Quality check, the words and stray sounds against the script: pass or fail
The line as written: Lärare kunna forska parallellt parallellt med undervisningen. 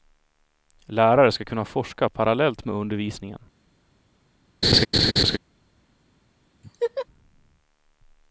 fail